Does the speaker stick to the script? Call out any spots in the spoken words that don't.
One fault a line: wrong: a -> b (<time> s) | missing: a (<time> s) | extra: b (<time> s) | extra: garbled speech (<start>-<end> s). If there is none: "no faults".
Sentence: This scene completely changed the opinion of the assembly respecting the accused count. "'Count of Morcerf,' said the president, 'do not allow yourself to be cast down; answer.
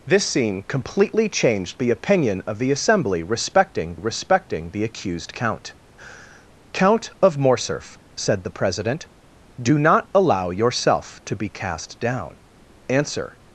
extra: respecting (4.0 s)